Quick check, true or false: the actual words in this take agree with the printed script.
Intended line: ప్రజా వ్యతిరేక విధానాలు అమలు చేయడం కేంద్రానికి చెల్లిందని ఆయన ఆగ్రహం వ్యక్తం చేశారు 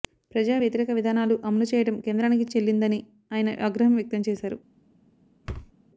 true